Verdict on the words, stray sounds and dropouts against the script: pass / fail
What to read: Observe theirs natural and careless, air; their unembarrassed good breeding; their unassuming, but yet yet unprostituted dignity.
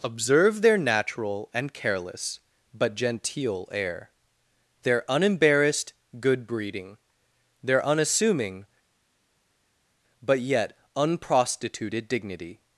fail